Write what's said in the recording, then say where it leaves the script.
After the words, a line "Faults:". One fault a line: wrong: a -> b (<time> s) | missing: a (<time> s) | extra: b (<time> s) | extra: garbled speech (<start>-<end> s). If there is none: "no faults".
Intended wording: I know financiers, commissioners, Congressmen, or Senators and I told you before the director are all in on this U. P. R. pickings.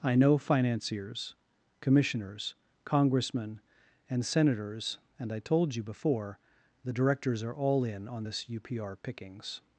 I know financiers, commissioners, Congressmen, and Senators and I told you before the directors are all in on this U. P. R. pickings.
Faults:
wrong: or -> and (4.1 s)
wrong: director -> directors (6.9 s)